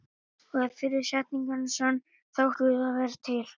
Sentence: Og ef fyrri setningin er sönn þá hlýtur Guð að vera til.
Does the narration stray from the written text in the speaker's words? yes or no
yes